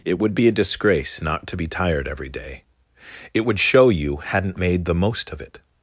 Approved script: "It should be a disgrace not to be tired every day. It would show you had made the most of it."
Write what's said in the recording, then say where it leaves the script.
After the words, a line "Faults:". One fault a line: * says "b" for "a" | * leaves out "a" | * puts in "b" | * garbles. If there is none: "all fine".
"It would be a disgrace not to be tired every day. It would show you hadn't made the most of it."
Faults:
* says "would" for "should"
* says "hadn't" for "had"